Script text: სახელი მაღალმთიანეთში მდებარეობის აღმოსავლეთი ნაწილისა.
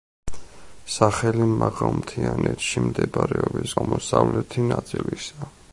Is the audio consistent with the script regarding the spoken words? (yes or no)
yes